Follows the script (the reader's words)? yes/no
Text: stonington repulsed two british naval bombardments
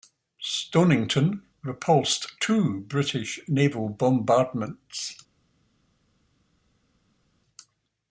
yes